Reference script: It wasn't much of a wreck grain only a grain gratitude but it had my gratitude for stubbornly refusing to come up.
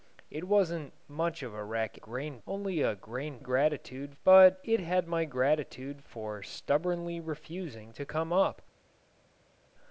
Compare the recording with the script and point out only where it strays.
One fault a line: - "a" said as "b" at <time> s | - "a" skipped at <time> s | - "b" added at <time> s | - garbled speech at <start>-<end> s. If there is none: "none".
none